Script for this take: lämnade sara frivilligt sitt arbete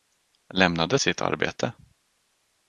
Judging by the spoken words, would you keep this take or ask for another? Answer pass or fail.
fail